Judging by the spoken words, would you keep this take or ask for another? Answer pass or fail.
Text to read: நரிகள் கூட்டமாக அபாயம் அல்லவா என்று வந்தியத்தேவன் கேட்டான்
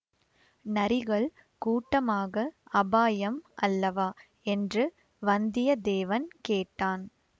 pass